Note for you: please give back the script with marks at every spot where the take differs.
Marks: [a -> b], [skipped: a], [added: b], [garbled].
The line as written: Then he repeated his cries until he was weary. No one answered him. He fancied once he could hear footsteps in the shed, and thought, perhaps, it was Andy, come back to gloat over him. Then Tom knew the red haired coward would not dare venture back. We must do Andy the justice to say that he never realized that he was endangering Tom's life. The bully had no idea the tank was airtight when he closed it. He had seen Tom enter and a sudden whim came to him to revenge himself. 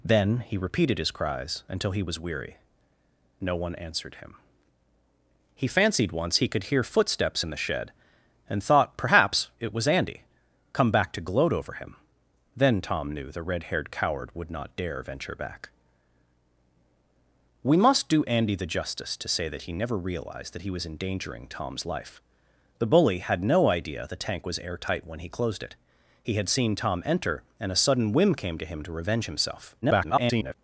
Then he repeated his cries until he was weary. No one answered him. He fancied once he could hear footsteps in the shed, and thought, perhaps, it was Andy, come back to gloat over him. Then Tom knew the red haired coward would not dare venture back. We must do Andy the justice to say that he never realized that he was endangering Tom's life. The bully had no idea the tank was airtight when he closed it. He had seen Tom enter and a sudden whim came to him to revenge himself. [garbled]